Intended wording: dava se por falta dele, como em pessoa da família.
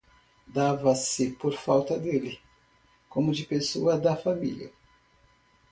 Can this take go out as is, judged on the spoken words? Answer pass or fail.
fail